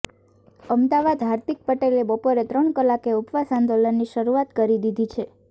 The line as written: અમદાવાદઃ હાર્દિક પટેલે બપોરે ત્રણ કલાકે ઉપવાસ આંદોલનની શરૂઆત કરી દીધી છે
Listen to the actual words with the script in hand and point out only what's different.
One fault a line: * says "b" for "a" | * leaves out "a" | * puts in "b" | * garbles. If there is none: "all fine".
all fine